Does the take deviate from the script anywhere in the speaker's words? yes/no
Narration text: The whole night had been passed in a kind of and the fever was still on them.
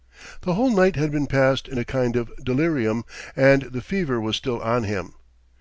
yes